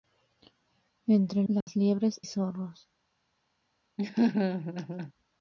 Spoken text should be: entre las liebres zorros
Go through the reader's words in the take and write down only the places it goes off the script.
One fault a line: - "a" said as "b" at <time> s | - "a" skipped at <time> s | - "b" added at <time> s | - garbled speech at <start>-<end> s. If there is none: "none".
none